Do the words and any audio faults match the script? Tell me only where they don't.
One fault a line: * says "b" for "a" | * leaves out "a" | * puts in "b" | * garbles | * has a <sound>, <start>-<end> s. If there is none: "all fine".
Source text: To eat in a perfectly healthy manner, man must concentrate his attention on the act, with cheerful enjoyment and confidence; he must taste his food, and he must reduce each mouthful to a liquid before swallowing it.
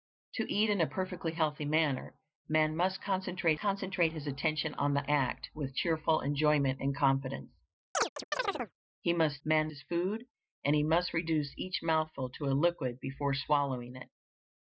* puts in "concentrate"
* has a chirp, 7.9-8.7 s
* says "man" for "taste"